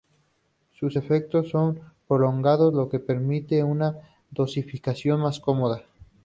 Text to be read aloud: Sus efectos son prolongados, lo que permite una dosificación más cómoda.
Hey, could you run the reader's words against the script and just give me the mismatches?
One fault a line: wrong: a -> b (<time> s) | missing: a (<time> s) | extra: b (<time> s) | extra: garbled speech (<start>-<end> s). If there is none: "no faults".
no faults